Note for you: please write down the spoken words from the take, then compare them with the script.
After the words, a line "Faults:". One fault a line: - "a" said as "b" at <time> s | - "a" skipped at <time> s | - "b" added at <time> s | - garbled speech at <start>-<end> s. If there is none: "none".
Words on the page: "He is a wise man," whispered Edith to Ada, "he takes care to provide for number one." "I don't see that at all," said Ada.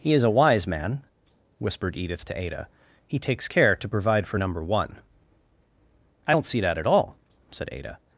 "He is a wise man," whispered Edith to Ada, "he takes care to provide for number one." "I don't see that at all," said Ada.
Faults:
none